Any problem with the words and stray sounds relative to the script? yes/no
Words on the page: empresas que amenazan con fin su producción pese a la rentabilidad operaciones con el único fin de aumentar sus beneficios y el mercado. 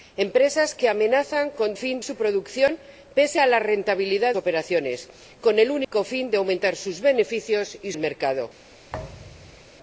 yes